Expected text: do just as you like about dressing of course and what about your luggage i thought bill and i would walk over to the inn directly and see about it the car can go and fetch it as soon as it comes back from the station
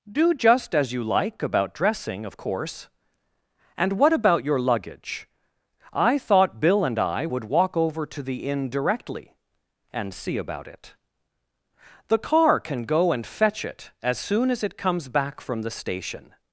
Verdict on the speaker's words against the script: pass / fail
pass